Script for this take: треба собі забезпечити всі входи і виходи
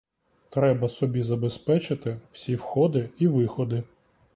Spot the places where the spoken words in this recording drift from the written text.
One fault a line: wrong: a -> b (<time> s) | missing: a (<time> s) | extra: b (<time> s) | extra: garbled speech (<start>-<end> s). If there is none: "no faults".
no faults